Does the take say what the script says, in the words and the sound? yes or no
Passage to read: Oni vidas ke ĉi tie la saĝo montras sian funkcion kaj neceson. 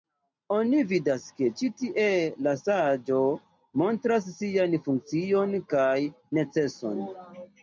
yes